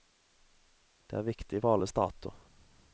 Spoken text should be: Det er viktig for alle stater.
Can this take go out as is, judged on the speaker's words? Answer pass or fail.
pass